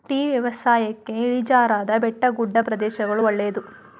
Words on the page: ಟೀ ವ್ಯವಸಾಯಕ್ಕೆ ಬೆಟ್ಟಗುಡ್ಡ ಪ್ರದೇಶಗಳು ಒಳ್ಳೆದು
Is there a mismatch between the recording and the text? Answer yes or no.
yes